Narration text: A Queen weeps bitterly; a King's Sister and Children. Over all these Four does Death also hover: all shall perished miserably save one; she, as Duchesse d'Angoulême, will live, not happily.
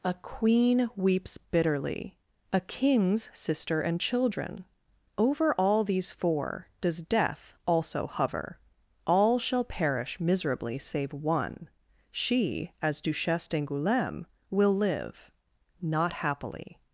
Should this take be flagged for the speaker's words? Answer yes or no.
yes